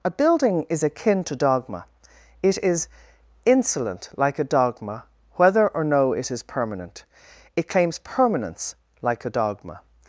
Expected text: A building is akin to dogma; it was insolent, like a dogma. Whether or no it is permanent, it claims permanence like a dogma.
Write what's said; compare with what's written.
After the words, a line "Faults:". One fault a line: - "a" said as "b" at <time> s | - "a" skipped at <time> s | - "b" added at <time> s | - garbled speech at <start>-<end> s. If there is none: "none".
A building is akin to dogma; it is insolent, like a dogma. Whether or no it is permanent, it claims permanence like a dogma.
Faults:
- "was" said as "is" at 2.6 s